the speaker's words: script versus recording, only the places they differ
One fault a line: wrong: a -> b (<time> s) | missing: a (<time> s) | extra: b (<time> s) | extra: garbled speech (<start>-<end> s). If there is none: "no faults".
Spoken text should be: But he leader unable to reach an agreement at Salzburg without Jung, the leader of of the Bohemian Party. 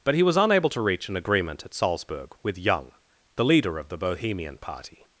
wrong: leader -> was (0.2 s)
wrong: without -> with (2.4 s)
missing: of (3.9 s)